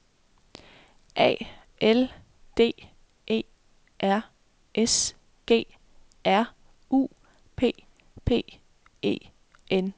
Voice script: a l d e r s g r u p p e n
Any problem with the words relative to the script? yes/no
no